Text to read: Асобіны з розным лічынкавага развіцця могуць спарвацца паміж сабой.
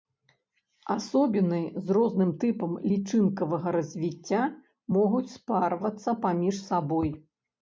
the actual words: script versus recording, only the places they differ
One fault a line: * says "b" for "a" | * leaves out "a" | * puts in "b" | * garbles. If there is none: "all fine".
* puts in "тыпам"